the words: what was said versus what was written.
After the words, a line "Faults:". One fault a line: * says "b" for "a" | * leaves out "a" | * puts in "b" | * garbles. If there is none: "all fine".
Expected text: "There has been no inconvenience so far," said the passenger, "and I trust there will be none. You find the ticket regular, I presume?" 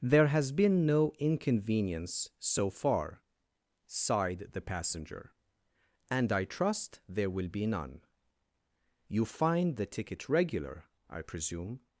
"There has been no inconvenience so far," sighed the passenger, "and I trust there will be none. You find the ticket regular, I presume?"
Faults:
* says "sighed" for "said"